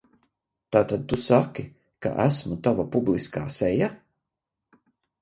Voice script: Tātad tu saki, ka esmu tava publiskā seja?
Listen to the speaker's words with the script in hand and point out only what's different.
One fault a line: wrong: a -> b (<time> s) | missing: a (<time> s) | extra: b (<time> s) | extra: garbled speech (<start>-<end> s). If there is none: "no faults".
no faults